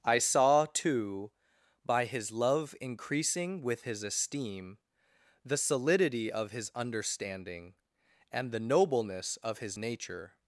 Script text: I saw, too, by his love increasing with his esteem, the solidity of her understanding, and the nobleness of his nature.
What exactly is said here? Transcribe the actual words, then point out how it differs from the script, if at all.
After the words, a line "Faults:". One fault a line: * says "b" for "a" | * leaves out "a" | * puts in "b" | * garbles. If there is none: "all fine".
I saw, too, by his love increasing with his esteem, the solidity of his understanding, and the nobleness of his nature.
Faults:
* says "his" for "her"